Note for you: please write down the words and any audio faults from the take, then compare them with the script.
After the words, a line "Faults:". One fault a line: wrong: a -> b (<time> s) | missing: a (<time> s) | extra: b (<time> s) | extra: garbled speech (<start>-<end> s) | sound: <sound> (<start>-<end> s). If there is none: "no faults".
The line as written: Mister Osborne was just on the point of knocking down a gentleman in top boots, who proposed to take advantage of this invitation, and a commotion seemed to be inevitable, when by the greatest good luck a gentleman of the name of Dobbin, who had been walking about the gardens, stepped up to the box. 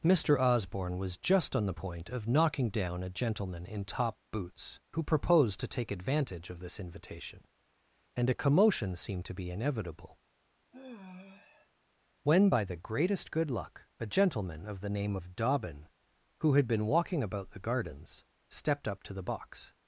Mister Osborne was just on the point of knocking down a gentleman in top boots, who proposed to take advantage of this invitation, and a commotion seemed to be inevitable, when by the greatest good luck a gentleman of the name of Dobbin, who had been walking about the gardens, stepped up to the box.
Faults:
sound: sigh (10.7-11.7 s)